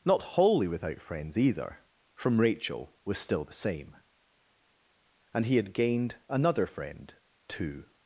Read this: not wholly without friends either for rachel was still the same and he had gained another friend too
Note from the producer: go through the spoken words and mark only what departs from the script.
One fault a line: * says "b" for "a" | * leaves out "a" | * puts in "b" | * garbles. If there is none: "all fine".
* says "from" for "for"